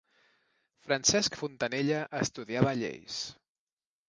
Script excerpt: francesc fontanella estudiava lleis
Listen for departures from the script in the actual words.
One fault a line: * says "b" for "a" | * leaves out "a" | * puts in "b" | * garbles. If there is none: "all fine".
all fine